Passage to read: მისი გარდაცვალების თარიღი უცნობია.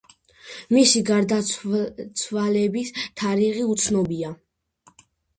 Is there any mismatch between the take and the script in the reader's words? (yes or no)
no